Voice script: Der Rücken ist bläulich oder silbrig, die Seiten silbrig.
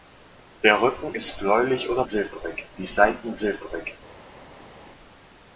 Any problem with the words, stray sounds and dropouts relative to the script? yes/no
no